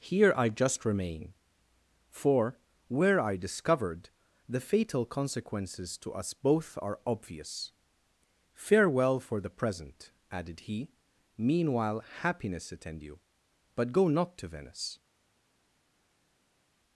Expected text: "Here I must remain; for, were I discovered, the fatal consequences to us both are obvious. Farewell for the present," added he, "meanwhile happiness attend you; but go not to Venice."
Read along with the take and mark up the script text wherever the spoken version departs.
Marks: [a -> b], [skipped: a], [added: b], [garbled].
"Here I [must -> just] remain; for, were I discovered, the fatal consequences to us both are obvious. Farewell for the present," added he, "meanwhile happiness attend you; but go not to Venice."